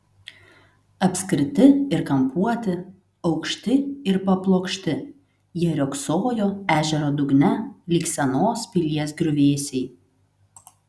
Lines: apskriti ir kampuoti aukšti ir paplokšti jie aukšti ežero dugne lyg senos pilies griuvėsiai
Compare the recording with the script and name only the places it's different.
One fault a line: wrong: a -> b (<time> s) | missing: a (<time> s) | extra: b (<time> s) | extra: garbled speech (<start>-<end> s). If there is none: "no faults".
wrong: aukšti -> riogsojo (5.8 s)